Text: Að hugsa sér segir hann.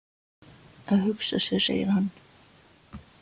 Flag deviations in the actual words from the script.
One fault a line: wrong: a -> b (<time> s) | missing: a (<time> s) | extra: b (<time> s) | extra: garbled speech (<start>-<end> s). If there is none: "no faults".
no faults